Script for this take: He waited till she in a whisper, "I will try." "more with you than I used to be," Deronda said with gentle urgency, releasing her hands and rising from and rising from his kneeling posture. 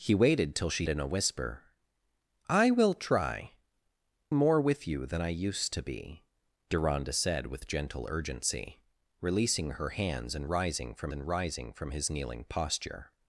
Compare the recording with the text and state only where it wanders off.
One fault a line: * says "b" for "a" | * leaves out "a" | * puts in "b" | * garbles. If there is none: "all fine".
all fine